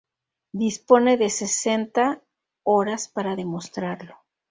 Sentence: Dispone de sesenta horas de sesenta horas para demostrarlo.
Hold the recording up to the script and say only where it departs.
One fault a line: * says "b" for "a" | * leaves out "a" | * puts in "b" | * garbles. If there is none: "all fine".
* leaves out "de sesenta horas"